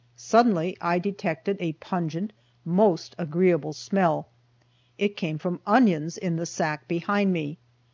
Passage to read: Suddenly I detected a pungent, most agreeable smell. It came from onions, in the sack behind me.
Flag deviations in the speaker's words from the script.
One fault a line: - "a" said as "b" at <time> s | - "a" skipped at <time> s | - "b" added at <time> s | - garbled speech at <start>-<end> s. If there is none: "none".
none